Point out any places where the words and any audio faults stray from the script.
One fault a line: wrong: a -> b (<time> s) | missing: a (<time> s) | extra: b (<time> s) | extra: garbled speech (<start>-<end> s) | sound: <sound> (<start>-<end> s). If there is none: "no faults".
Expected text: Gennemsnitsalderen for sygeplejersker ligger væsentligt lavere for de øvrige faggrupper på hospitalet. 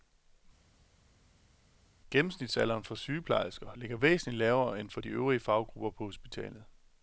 extra: end (4.8 s)